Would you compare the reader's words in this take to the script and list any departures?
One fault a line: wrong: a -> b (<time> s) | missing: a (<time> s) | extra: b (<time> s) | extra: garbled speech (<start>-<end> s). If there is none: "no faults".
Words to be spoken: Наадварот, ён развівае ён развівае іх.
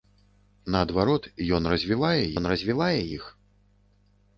no faults